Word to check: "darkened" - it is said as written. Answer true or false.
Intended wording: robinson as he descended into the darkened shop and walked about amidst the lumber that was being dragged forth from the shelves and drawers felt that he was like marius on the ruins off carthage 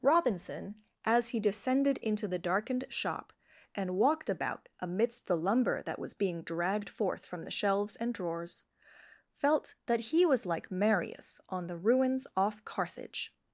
true